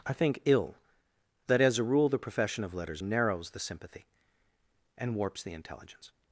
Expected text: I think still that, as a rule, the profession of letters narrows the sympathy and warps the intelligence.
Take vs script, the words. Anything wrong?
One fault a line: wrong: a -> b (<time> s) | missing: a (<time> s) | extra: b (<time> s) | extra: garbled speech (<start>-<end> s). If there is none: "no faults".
wrong: still -> ill (0.5 s)